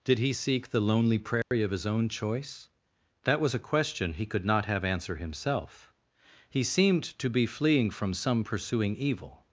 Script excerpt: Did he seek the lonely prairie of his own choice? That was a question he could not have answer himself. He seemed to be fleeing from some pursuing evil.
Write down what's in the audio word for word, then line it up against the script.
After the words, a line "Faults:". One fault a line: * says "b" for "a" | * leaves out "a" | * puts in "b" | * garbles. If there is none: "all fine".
Did he seek the lonely prairie of his own choice? That was a question he could not have answer himself. He seemed to be fleeing from some pursuing evil.
Faults:
all fine